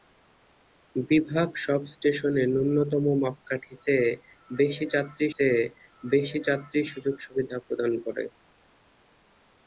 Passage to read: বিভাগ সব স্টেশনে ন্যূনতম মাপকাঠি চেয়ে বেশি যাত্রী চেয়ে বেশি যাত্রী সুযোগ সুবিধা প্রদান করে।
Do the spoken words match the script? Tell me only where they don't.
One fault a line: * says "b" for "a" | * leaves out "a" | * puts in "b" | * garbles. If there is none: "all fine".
all fine